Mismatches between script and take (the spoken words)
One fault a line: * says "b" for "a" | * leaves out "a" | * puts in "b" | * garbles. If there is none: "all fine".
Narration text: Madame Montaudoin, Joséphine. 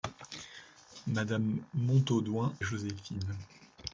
all fine